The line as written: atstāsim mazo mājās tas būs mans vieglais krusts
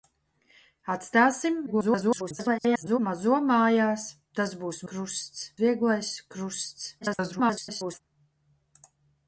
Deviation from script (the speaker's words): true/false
true